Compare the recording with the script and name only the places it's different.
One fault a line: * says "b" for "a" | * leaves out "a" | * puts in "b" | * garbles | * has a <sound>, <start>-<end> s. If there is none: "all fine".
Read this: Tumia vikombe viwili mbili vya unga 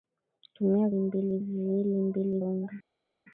* says "mbili" for "vikombe"
* leaves out "vya"